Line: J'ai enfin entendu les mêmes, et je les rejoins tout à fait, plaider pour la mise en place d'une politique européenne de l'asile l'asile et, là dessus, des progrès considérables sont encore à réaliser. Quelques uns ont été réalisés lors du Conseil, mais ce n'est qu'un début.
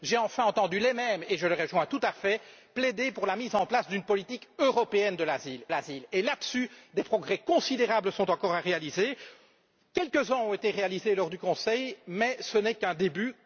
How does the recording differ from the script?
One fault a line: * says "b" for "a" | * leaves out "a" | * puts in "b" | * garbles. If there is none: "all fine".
all fine